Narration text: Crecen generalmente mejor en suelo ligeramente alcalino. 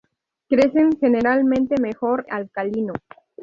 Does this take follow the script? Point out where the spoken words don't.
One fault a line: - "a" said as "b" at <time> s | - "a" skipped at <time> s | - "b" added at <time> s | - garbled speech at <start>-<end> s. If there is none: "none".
- "en suelo ligeramente" skipped at 2.2 s